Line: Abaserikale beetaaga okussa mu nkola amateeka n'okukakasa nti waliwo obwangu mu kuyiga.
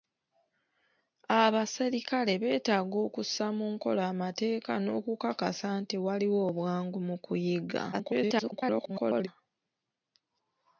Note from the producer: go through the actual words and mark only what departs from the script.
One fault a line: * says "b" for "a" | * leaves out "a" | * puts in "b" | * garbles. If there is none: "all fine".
* garbles